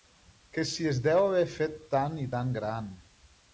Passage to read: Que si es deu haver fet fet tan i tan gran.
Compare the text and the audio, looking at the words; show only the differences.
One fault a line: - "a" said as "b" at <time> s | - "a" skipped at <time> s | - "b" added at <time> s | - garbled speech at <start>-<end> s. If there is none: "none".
- "fet" skipped at 1.8 s